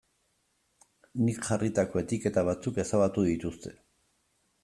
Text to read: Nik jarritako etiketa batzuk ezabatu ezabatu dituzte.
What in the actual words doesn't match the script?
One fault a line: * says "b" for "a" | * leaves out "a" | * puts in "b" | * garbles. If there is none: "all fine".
* leaves out "ezabatu"